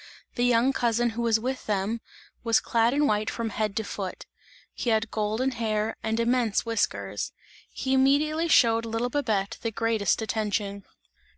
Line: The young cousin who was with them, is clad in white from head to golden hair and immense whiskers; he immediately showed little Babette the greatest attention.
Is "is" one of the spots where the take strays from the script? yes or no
yes